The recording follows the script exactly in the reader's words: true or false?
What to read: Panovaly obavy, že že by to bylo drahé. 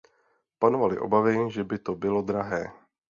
false